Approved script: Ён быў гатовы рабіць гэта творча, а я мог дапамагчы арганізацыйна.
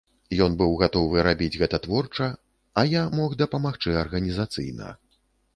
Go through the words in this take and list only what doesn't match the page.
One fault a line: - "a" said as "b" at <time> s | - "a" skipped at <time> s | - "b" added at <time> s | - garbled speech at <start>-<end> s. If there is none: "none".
none